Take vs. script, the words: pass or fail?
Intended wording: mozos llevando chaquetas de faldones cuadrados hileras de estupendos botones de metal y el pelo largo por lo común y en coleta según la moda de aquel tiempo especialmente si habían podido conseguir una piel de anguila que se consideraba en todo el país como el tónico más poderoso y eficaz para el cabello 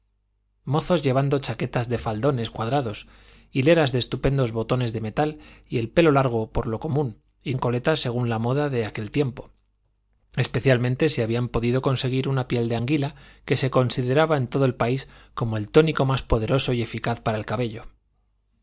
pass